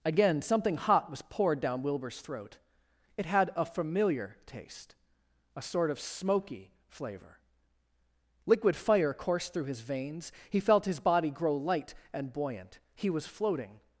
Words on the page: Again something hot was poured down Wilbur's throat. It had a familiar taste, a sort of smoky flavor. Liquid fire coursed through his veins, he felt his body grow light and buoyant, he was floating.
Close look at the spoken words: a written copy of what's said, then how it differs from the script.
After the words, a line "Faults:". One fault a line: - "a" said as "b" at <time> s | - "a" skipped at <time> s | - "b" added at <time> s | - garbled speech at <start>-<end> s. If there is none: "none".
Again something hot was poured down Wilbur's throat. It had a familiar taste, a sort of smoky flavor. Liquid fire coursed through his veins, he felt his body grow light and buoyant, he was floating.
Faults:
none